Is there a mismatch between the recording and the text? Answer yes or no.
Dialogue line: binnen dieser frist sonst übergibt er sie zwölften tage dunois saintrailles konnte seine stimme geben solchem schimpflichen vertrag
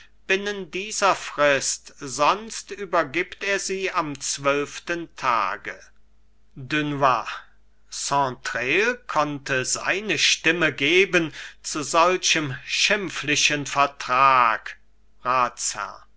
yes